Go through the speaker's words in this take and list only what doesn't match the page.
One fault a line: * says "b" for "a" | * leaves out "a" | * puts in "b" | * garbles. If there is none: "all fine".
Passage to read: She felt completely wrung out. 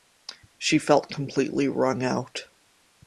all fine